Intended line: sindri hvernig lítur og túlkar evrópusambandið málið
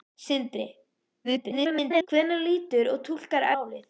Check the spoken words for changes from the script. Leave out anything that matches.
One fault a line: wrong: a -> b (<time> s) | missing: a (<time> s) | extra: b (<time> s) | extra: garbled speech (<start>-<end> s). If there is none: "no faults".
extra: garbled speech (1.2-2.1 s)
missing: evrópusambandið (3.5 s)